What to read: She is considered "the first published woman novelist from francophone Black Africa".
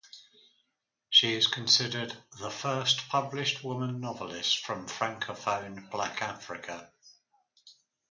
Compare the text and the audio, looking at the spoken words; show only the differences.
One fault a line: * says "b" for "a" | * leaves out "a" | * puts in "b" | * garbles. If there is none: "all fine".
all fine